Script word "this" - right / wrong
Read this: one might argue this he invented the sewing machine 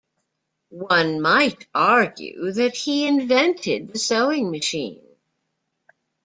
wrong